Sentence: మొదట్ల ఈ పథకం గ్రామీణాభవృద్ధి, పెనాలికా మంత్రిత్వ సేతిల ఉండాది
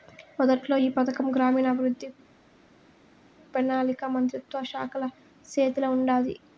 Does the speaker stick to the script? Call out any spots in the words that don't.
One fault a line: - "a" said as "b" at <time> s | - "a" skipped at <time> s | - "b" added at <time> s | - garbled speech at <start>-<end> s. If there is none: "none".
- "శాఖల" added at 4.7 s